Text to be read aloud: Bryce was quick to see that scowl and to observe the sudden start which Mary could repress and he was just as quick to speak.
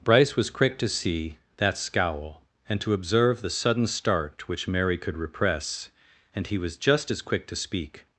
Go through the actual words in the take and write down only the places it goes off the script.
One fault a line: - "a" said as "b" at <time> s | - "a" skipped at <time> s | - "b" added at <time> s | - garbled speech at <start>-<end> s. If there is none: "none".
none